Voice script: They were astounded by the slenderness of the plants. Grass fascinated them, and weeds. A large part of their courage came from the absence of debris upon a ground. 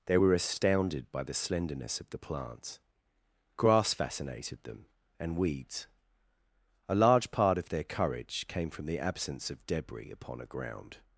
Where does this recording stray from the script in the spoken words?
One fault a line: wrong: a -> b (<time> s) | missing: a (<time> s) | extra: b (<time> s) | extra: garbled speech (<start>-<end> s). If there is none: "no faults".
no faults